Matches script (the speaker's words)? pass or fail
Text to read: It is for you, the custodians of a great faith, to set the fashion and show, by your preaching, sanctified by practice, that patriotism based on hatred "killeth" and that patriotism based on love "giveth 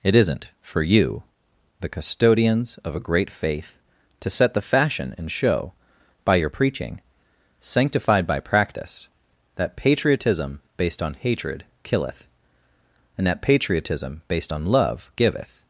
fail